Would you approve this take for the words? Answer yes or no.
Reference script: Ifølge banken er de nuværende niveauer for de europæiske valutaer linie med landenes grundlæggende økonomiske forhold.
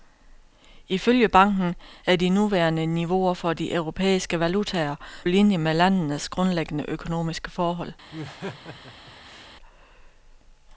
yes